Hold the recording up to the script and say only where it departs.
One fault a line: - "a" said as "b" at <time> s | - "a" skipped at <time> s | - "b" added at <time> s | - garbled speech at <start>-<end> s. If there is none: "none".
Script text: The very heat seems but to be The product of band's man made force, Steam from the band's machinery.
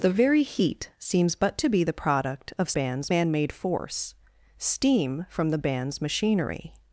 none